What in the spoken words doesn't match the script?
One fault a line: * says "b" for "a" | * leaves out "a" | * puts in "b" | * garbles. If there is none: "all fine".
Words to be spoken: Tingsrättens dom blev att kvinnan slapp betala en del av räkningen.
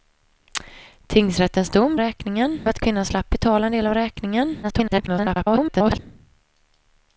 * says "räkningen" for "blev"
* garbles